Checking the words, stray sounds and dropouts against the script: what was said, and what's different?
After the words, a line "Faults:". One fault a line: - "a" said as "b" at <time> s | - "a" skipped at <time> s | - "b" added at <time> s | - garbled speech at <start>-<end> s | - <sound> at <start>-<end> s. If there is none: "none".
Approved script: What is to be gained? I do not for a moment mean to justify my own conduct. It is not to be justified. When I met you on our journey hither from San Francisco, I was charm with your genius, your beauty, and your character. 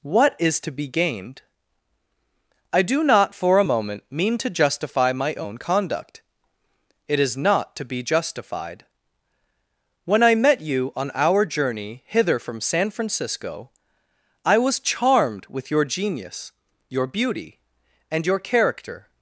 What is to be gained? I do not for a moment mean to justify my own conduct. It is not to be justified. When I met you on our journey hither from San Francisco, I was charmed with your genius, your beauty, and your character.
Faults:
- "charm" said as "charmed" at 14.8 s